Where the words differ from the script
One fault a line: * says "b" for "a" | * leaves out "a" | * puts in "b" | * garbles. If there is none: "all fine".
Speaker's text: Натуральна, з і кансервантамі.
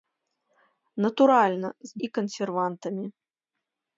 all fine